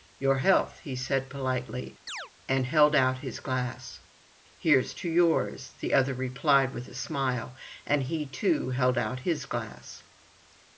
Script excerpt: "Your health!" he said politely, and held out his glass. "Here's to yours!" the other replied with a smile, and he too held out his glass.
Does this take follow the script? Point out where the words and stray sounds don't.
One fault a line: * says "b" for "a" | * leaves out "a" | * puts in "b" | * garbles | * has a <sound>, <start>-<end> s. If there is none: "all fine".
* has a chirp, 2.1-2.3 s